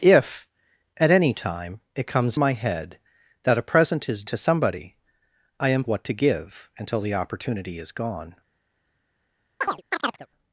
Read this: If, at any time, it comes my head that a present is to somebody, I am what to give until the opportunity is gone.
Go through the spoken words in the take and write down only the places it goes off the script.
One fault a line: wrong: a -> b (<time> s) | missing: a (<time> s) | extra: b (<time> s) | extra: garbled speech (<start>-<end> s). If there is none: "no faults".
no faults